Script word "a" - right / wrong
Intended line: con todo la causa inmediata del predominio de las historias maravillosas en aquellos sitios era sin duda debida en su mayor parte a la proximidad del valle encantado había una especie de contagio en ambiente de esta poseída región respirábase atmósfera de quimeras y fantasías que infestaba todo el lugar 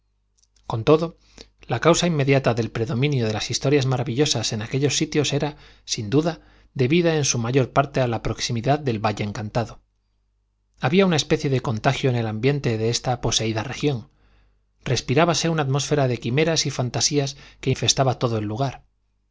right